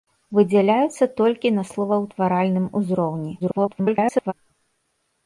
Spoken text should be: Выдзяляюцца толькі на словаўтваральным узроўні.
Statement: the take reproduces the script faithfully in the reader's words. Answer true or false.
false